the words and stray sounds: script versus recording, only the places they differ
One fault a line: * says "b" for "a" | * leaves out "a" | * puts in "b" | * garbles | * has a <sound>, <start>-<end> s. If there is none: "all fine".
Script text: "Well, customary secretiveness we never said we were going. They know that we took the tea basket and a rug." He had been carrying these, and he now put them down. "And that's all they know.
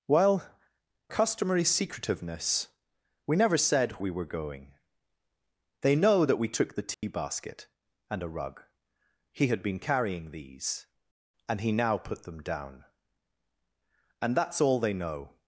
* has a dropout, 6.9-7.0 s